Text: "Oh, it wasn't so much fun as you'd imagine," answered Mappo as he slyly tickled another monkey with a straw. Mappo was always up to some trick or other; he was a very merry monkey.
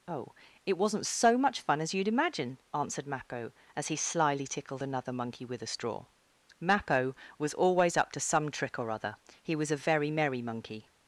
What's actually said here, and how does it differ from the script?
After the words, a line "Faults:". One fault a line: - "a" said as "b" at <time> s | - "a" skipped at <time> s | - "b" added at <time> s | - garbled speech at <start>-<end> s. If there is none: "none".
"Oh, it wasn't so much fun as you'd imagine," answered Mappo as he slyly tickled another monkey with a straw. Mappo was always up to some trick or other; he was a very merry monkey.
Faults:
none